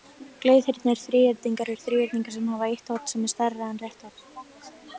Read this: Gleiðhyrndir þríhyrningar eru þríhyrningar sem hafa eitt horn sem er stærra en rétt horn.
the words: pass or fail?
pass